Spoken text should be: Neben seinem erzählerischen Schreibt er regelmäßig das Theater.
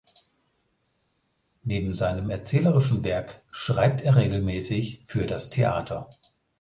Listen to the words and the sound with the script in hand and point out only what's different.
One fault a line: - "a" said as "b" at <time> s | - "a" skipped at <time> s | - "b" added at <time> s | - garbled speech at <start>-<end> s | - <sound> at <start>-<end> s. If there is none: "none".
- "Werk" added at 3.0 s
- "für" added at 5.0 s